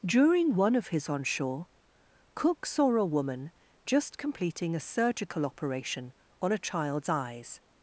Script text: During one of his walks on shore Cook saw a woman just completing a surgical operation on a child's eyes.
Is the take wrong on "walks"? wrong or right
wrong